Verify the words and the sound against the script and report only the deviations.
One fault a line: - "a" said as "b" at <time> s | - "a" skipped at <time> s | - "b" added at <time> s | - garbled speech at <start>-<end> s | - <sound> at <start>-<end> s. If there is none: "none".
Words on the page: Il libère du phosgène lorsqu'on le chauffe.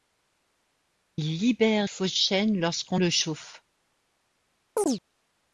- "du" skipped at 1.9 s
- chirp at 4.8-5.0 s